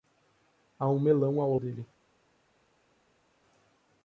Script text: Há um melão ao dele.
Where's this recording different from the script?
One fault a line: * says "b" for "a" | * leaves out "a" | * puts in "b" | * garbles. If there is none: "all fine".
all fine